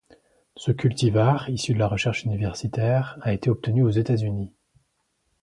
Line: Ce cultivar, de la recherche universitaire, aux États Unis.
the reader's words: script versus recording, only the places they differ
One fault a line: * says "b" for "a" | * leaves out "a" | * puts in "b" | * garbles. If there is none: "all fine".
* puts in "issu"
* puts in "a été obtenu"